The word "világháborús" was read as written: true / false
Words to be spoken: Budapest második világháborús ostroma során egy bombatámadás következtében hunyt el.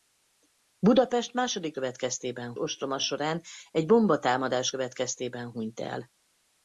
false